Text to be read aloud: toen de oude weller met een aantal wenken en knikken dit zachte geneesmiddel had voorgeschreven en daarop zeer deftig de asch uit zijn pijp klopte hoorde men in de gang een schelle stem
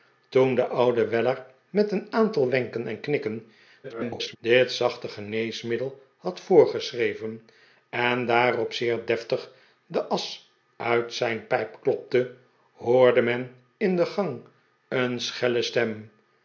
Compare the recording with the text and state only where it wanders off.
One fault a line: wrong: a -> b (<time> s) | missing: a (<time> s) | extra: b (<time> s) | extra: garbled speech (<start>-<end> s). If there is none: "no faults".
extra: garbled speech (3.8-4.4 s)